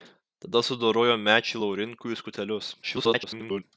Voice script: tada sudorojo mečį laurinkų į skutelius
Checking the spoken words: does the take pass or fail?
fail